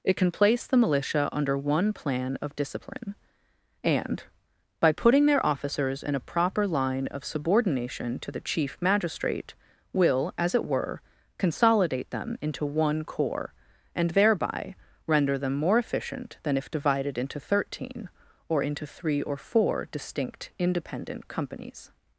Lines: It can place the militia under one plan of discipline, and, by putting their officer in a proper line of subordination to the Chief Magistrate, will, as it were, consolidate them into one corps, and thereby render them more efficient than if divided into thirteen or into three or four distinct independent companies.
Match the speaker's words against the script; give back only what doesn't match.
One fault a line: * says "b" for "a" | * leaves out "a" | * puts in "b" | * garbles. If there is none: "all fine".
* says "officers" for "officer"